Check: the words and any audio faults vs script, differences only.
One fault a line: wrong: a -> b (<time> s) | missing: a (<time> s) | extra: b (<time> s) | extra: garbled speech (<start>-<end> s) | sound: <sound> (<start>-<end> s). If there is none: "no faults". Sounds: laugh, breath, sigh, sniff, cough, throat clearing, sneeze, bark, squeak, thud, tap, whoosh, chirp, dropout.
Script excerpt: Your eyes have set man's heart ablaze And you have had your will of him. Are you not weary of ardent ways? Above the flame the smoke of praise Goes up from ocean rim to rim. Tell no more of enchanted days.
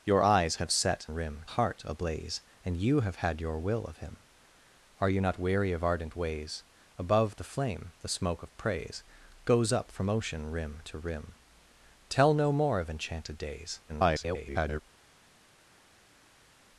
wrong: man's -> rim (1.1 s)
extra: garbled speech (13.9-14.8 s)